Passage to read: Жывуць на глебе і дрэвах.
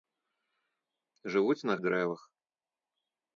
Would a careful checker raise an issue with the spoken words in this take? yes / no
yes